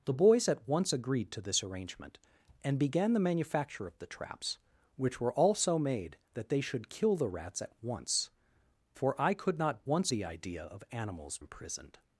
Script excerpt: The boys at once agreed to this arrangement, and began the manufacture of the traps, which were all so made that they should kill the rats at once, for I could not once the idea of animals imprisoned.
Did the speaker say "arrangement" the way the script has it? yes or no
yes